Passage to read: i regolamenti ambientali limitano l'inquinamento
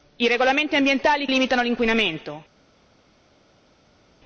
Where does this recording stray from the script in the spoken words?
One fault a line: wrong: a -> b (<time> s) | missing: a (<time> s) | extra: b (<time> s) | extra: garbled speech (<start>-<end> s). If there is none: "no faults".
no faults